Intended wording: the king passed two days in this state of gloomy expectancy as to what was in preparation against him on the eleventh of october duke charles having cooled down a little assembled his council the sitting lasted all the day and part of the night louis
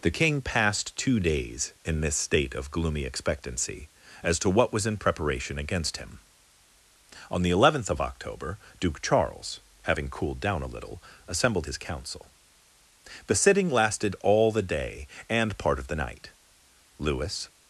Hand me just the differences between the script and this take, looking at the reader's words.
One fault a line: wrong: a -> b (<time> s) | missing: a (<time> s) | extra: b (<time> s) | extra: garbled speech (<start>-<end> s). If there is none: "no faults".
no faults